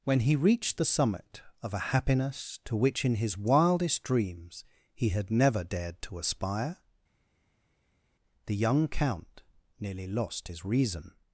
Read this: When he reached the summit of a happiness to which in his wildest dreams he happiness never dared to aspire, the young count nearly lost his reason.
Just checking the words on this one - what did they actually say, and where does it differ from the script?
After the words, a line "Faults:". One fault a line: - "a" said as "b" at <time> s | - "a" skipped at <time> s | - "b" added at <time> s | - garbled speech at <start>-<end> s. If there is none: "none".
When he reached the summit of a happiness to which in his wildest dreams he had never dared to aspire, the young count nearly lost his reason.
Faults:
- "happiness" said as "had" at 5.1 s